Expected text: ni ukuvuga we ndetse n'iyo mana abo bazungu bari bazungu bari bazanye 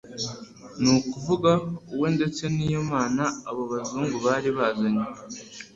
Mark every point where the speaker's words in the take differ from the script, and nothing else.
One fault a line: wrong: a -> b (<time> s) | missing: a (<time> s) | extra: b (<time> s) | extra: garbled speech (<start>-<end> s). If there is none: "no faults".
missing: bazungu bari (4.5 s)